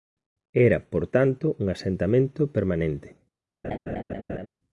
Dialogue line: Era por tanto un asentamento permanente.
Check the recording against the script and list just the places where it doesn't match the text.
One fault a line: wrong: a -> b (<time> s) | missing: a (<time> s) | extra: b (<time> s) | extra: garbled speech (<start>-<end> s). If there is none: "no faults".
no faults